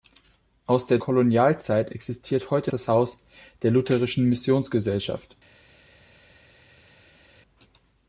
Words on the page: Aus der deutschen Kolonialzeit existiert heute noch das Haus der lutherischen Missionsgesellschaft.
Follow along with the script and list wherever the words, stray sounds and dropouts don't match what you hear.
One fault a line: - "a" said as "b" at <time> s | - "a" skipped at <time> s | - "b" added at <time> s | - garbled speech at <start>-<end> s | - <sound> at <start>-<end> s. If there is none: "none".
- "deutschen" skipped at 1.0 s
- "noch" skipped at 2.7 s